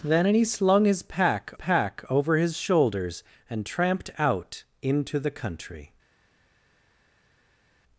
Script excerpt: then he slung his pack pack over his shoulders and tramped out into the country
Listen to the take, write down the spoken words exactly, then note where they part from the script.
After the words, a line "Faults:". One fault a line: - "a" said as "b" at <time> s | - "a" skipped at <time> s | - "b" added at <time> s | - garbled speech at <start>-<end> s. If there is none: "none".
then he slung his pack pack over his shoulders and tramped out into the country
Faults:
none